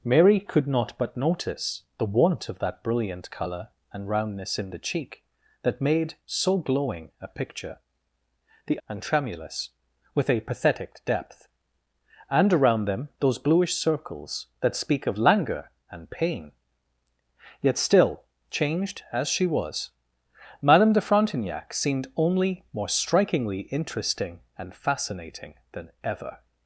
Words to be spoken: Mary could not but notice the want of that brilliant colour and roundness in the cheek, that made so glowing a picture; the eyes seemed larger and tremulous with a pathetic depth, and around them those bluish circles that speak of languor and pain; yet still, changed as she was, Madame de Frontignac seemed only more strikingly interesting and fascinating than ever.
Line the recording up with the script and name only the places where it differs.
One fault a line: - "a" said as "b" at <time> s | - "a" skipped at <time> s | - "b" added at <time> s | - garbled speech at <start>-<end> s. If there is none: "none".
- "eyes seemed larger" skipped at 8.8 s